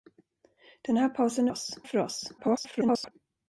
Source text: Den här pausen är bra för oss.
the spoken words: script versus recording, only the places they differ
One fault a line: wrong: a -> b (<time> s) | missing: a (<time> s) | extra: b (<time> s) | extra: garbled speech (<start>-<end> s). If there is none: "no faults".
wrong: bra -> oss (1.5 s)
extra: garbled speech (2.4-3.1 s)